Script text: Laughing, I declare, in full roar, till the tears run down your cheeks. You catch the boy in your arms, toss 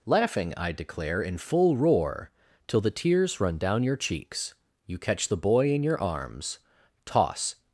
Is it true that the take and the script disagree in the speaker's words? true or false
false